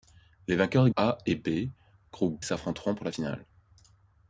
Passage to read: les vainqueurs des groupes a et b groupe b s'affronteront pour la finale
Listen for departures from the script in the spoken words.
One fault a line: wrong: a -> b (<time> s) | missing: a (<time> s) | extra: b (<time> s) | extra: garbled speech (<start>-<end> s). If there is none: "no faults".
missing: groupes (0.9 s)
missing: b (2.4 s)